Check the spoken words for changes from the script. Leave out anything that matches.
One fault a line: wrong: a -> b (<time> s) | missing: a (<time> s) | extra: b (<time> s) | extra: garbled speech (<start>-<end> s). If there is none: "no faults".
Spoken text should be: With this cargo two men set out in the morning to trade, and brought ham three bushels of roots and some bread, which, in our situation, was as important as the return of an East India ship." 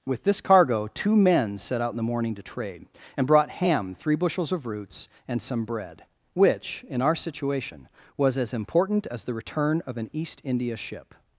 no faults